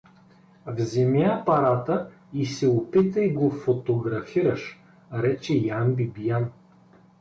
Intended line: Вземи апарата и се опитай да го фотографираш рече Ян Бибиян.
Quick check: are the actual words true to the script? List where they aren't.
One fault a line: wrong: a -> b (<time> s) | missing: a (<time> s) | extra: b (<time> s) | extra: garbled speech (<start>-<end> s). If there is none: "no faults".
missing: да (3.3 s)